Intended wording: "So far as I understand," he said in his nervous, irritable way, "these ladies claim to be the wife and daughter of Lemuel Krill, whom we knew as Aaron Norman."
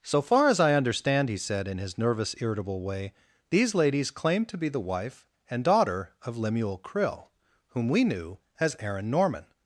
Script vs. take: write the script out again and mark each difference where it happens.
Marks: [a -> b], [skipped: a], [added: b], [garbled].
"So far as I understand," he said in his nervous, irritable way, "these ladies claim to be the wife and daughter of Lemuel Krill, whom we knew as Aaron Norman."